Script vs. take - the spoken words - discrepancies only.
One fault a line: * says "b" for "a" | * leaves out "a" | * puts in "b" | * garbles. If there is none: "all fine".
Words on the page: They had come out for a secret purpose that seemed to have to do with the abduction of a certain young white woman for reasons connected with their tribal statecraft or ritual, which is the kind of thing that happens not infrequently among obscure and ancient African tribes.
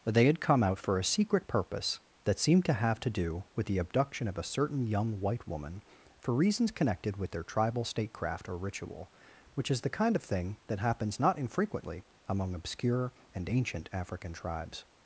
all fine